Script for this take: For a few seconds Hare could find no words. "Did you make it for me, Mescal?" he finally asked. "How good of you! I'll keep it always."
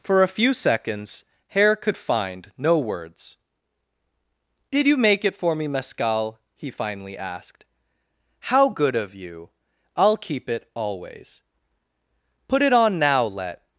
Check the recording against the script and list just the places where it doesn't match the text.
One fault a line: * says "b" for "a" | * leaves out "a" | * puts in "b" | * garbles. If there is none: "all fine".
* puts in "Put it on now let"